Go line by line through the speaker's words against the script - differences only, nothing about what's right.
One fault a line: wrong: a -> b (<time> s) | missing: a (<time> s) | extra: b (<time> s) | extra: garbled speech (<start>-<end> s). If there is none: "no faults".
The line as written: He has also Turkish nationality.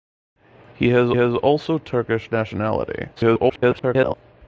extra: has (1.1 s)
extra: garbled speech (3.2-4.1 s)